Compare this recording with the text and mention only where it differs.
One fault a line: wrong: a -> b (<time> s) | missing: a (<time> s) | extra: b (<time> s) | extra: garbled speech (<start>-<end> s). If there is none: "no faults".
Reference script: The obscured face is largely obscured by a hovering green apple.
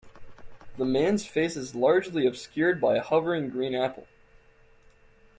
wrong: obscured -> man's (0.8 s)